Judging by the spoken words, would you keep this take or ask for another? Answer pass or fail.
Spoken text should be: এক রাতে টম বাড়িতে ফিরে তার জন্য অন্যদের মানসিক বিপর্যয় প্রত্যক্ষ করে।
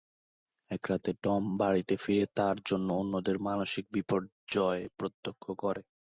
pass